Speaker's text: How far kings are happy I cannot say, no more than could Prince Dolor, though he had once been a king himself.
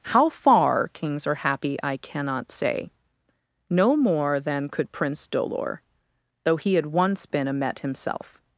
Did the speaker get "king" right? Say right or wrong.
wrong